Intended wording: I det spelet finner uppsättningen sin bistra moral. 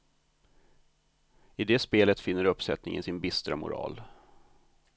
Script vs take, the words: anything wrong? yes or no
no